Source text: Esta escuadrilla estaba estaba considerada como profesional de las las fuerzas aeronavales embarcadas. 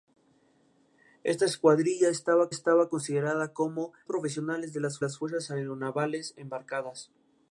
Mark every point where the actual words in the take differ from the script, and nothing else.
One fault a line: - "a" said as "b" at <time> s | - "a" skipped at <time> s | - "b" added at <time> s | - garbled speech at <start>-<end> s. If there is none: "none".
none